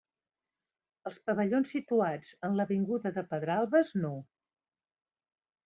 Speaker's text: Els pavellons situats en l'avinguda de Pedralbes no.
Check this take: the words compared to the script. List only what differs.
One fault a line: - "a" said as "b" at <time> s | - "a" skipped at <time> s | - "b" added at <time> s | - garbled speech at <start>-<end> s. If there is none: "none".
none